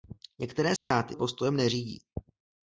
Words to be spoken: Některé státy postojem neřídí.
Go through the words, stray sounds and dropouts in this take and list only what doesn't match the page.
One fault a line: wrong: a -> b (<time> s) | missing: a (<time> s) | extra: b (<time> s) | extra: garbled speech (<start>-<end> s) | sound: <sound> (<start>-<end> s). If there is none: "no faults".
sound: dropout (0.8-0.9 s)